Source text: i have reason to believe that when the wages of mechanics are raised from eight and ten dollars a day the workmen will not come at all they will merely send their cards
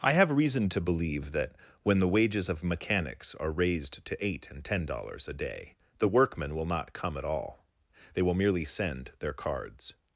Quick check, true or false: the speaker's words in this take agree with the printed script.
false